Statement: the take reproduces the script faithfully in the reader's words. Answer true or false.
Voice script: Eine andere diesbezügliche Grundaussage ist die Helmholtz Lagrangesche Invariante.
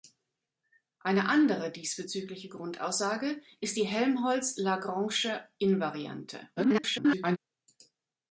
false